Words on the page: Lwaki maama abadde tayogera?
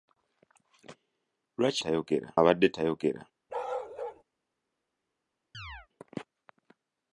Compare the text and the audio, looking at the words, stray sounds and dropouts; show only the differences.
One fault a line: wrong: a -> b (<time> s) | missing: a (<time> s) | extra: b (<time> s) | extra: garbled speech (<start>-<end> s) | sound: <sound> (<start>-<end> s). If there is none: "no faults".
wrong: maama -> tayogera (1.8 s)
sound: bark (3.5-4.2 s)
sound: chirp (5.5-5.9 s)